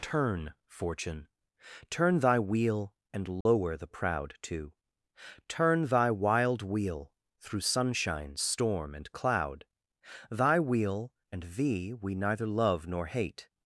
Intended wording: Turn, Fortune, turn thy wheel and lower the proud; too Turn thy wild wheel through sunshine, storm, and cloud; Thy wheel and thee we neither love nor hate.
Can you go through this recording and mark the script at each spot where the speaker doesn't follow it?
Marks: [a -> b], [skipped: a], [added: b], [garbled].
Turn, Fortune, turn thy wheel and lower the proud; too Turn thy wild wheel through sunshine, storm, and cloud; Thy wheel and thee we neither love nor hate.